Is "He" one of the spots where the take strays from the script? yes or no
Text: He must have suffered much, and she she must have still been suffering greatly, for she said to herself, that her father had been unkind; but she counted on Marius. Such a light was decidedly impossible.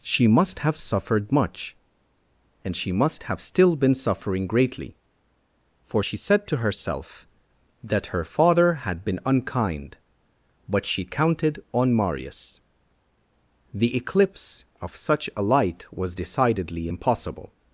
yes